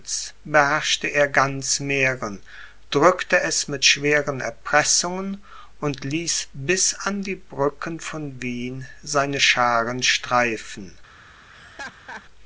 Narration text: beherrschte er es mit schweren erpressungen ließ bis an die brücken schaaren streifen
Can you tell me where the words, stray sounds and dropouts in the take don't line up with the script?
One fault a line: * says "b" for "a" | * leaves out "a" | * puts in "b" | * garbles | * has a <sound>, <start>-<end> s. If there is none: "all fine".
* puts in "ganz mähren drückte"
* puts in "und"
* puts in "von wien seine"
* has a laugh, 11.5-12.2 s